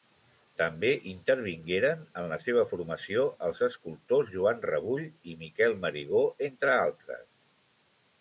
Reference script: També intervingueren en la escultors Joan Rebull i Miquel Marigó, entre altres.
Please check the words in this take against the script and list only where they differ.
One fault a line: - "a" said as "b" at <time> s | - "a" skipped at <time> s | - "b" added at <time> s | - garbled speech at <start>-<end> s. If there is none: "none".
- "seva formació els" added at 2.5 s